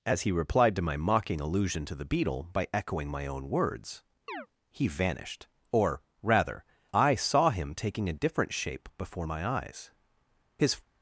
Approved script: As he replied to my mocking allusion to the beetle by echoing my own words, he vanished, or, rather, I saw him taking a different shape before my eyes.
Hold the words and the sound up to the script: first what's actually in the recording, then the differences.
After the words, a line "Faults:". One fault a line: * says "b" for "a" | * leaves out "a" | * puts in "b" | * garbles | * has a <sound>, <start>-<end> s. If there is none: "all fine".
As he replied to my mocking allusion to the beetle by echoing my own words, he vanished, or, rather, I saw him taking a different shape before my eyes. His
Faults:
* has a chirp, 4.3-4.5 s
* puts in "His"